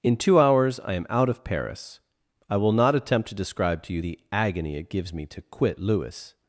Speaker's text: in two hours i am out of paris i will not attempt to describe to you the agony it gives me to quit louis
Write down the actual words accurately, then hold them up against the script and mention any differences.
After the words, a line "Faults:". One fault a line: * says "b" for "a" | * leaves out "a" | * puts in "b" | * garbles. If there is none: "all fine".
in two hours i am out of paris i will not attempt to describe to you the agony it gives me to quit louis
Faults:
all fine